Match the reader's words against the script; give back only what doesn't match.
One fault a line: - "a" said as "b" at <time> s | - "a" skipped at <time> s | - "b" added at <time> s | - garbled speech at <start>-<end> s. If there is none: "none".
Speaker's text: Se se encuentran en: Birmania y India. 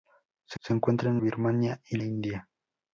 none